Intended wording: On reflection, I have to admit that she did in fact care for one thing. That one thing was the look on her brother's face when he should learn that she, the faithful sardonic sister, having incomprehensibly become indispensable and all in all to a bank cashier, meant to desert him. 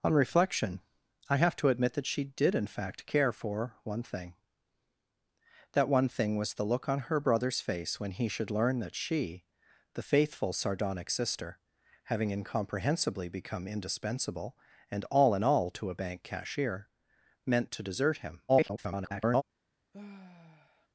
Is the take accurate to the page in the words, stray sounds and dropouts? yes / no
no